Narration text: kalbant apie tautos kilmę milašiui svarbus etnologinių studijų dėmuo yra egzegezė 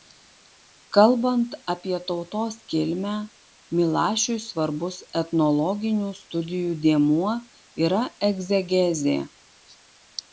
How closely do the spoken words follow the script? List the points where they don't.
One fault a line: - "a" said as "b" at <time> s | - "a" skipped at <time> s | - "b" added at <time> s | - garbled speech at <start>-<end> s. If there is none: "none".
none